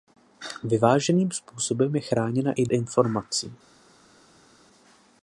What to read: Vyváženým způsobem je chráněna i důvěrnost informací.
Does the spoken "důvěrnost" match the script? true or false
false